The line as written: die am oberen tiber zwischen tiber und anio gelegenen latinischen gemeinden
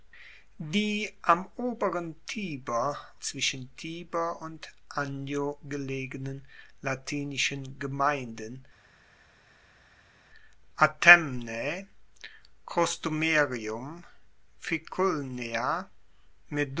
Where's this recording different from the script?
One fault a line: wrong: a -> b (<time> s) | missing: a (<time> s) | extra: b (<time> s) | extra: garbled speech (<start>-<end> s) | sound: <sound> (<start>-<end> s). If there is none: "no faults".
no faults